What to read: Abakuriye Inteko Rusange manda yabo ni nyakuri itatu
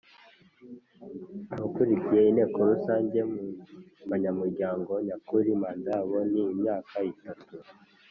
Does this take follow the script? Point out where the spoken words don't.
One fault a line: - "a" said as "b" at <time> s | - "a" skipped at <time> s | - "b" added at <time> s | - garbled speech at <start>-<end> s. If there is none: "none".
- "mu banyamuryango nyakuri" added at 3.3 s
- "nyakuri" said as "imyaka" at 6.5 s